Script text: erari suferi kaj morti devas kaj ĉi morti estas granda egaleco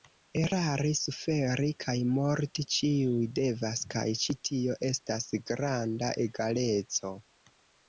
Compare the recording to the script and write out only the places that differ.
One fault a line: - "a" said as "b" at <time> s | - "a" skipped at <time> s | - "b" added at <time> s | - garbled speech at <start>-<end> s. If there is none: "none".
- "ĉiuj" added at 2.8 s
- "morti" said as "tio" at 4.5 s